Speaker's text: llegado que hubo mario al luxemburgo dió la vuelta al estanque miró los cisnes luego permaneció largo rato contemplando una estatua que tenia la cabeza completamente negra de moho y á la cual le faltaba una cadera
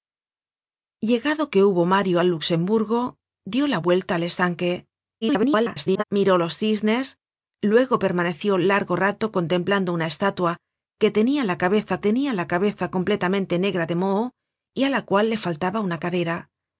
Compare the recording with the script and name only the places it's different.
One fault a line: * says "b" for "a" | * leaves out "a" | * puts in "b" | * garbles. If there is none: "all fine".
* garbles
* puts in "tenia la cabeza"